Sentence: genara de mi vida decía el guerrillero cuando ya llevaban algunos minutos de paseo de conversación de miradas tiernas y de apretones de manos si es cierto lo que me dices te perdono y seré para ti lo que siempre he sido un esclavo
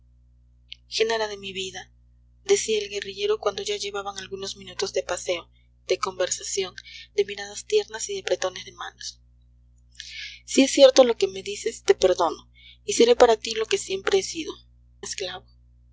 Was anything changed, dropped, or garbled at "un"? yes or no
yes